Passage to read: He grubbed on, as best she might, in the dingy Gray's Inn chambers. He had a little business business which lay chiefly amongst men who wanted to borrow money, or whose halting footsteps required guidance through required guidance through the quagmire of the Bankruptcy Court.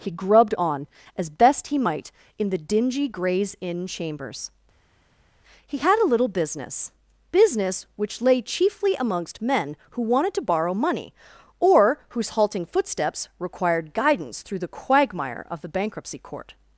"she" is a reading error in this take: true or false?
true